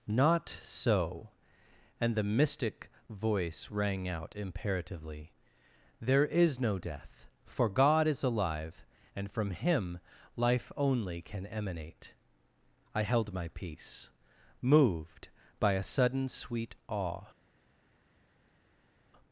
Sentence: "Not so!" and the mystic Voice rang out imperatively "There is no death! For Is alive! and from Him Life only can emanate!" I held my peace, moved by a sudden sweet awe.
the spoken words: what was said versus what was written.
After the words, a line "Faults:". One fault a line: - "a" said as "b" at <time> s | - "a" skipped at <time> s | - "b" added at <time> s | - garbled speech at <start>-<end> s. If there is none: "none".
"Not so!" and the mystic Voice rang out imperatively "There is no death! For God is alive! and from Him Life only can emanate!" I held my peace, moved by a sudden sweet awe.
Faults:
- "God" added at 7.7 s